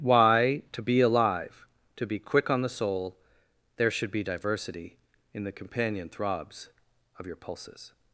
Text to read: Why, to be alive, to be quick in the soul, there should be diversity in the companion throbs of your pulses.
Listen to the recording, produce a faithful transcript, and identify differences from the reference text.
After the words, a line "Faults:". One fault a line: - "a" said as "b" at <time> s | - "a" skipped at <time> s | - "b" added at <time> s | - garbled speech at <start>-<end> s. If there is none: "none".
Why, to be alive, to be quick on the soul, there should be diversity in the companion throbs of your pulses.
Faults:
- "in" said as "on" at 2.5 s